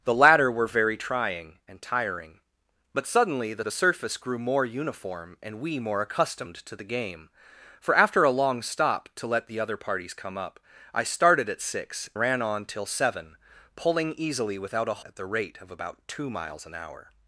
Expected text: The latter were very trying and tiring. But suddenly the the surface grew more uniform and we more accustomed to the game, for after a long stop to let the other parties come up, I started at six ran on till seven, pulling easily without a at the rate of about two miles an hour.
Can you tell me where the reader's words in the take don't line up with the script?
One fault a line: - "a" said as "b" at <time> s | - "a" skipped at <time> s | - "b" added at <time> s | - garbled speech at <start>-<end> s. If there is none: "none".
none